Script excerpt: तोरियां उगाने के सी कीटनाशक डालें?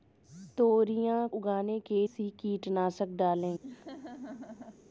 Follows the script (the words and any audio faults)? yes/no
no